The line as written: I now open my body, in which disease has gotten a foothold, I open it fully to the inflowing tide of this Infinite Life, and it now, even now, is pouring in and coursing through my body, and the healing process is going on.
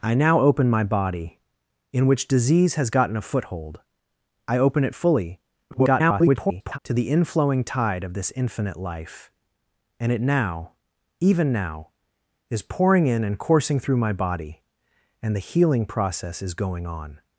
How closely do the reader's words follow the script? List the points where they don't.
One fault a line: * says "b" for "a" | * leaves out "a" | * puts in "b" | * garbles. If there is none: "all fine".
* garbles